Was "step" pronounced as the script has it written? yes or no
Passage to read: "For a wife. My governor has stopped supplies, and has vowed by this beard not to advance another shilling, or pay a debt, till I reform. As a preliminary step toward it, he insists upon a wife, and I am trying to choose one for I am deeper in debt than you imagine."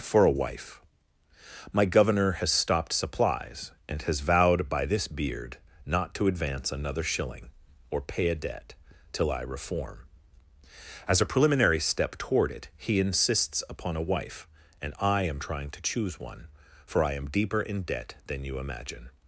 yes